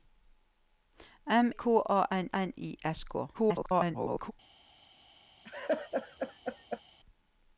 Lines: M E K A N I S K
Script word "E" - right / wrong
wrong